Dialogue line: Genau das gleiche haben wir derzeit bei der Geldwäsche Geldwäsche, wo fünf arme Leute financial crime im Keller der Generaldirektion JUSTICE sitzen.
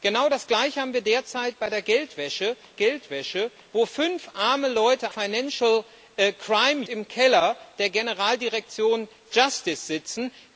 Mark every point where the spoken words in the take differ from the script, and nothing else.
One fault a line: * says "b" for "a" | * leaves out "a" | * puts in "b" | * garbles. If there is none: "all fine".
all fine